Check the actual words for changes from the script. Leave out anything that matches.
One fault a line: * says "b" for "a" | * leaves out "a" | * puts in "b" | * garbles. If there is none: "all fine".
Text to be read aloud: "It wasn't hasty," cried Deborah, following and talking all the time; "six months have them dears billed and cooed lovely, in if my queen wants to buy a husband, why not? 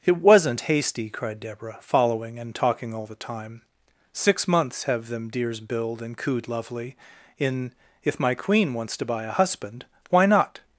all fine